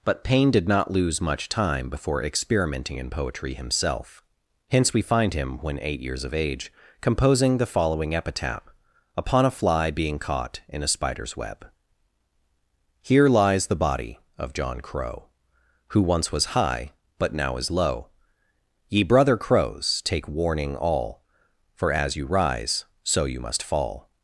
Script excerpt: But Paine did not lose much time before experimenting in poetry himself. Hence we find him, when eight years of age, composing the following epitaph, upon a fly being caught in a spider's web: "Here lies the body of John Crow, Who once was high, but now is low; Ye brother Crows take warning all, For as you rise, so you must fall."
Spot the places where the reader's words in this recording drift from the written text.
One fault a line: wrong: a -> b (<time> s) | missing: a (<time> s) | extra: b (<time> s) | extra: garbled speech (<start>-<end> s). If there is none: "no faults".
no faults